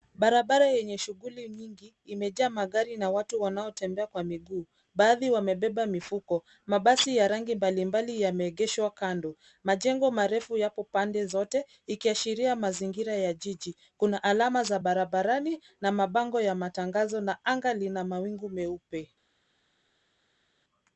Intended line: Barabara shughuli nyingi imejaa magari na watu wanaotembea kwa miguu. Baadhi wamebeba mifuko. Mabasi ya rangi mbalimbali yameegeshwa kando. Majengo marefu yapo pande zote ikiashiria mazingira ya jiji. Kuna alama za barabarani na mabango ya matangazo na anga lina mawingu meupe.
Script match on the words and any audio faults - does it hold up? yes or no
no